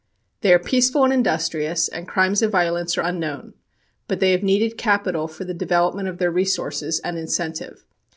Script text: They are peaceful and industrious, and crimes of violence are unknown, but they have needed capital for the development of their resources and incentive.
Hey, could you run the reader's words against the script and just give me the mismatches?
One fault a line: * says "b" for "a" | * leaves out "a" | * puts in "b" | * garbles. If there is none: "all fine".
all fine